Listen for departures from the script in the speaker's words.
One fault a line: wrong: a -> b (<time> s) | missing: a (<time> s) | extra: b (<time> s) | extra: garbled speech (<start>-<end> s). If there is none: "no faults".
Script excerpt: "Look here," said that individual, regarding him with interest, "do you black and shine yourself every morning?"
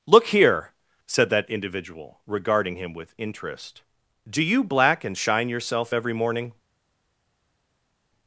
no faults